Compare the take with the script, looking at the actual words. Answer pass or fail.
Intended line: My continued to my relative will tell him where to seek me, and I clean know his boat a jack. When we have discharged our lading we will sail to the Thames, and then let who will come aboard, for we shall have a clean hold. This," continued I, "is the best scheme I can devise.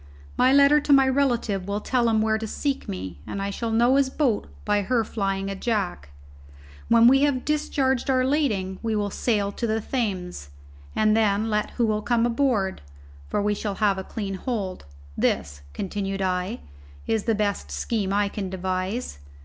fail